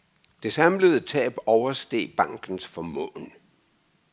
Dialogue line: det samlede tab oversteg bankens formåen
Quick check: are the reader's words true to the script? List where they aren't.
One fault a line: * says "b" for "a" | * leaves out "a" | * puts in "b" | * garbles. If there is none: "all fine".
all fine